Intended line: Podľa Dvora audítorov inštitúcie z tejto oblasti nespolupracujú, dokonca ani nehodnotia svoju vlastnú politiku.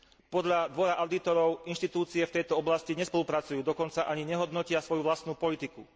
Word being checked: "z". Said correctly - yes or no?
no